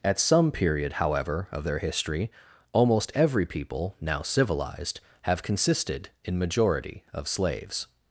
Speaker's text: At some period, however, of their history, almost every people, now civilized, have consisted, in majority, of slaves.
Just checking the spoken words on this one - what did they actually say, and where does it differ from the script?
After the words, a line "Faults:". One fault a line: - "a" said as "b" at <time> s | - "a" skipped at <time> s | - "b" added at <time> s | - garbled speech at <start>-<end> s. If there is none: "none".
At some period, however, of their history, almost every people, now civilized, have consisted, in majority, of slaves.
Faults:
none